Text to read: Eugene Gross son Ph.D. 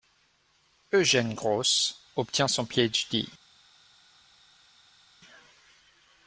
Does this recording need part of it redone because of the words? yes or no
yes